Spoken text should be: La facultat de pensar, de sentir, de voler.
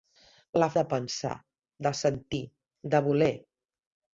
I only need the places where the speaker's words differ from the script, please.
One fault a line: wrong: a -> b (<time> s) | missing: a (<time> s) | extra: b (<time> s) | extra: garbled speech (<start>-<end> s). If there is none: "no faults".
missing: facultat (0.7 s)